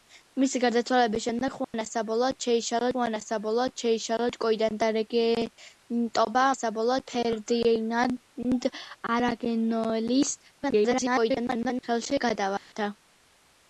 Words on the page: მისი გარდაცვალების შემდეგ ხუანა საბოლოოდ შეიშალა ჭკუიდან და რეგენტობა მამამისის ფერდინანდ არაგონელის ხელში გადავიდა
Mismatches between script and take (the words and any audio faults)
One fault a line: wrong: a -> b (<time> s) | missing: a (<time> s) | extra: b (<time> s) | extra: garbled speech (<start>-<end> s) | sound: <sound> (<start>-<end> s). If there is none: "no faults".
sound: dropout (1.6-1.7 s)
extra: ხუანა საბოლოოდ შეიშალა (2.9 s)
wrong: მამამისის -> საბოლოოდ (6.6 s)
extra: garbled speech (10.6-11.8 s)
sound: dropout (12.6-12.7 s)